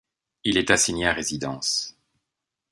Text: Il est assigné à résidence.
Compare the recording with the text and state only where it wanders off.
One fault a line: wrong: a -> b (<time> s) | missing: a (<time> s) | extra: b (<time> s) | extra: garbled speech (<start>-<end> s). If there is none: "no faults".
no faults